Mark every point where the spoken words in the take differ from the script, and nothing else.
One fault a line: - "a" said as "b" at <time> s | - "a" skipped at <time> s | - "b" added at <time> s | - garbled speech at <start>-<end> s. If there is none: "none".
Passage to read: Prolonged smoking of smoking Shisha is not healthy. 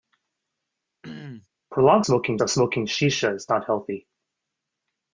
none